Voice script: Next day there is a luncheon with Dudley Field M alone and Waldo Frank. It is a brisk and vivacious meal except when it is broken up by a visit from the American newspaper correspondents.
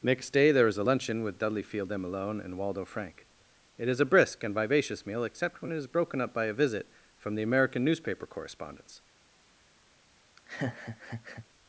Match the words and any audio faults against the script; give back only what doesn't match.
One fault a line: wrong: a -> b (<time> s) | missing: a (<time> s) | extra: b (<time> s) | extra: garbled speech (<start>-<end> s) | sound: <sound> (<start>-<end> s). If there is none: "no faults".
sound: laugh (10.4-11.5 s)